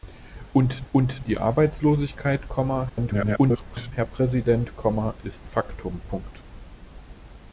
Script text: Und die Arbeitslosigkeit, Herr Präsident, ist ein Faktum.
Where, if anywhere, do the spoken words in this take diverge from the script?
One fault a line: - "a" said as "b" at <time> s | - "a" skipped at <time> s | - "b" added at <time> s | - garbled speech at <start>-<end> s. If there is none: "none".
- "und" added at 0.9 s
- garbled speech at 2.9-3.9 s
- "ein" skipped at 5.5 s